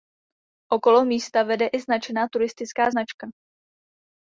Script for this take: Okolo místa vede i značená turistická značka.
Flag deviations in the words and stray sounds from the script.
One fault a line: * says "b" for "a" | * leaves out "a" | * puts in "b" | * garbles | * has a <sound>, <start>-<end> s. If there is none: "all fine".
all fine